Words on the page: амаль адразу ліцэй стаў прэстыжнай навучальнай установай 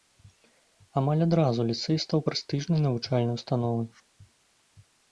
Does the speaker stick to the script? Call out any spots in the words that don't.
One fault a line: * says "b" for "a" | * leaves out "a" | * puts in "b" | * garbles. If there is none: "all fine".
all fine